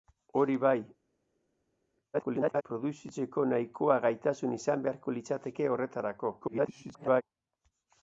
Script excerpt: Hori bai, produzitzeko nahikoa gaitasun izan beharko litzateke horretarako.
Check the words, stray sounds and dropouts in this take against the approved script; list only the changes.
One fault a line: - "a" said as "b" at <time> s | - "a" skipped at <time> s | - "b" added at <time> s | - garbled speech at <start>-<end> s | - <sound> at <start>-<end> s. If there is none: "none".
- garbled speech at 2.1-2.6 s
- garbled speech at 6.4-7.2 s